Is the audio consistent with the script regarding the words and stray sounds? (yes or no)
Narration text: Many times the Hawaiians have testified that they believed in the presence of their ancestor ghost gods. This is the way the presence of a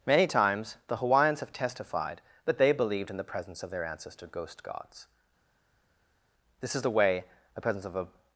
yes